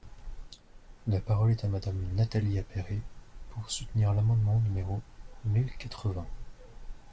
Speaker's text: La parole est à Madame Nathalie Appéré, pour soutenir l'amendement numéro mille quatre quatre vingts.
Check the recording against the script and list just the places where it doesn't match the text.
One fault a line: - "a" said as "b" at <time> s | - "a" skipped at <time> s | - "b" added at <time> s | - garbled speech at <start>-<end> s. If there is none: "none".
- "quatre" skipped at 6.1 s